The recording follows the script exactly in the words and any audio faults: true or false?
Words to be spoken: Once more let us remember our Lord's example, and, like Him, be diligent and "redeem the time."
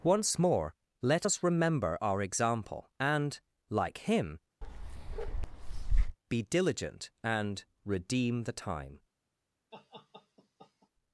false